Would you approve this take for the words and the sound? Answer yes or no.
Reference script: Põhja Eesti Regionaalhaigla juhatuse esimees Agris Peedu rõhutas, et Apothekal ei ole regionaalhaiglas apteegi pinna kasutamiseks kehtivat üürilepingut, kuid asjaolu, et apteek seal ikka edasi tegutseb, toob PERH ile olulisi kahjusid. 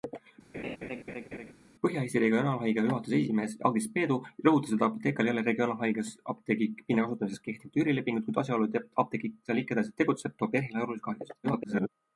no